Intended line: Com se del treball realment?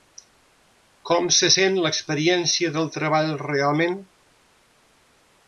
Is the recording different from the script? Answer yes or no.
yes